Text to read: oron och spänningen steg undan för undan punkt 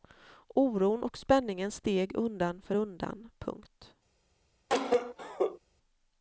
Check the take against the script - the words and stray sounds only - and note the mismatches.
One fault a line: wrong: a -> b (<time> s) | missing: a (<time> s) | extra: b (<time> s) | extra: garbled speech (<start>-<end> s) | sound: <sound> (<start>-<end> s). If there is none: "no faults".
sound: cough (4.7-5.6 s)